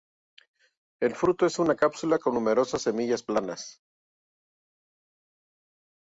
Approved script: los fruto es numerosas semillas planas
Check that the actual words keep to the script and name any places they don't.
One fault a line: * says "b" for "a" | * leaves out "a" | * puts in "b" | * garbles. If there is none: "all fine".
* says "el" for "los"
* puts in "una cápsula con"